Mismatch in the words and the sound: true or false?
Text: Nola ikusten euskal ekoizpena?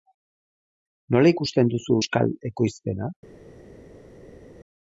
true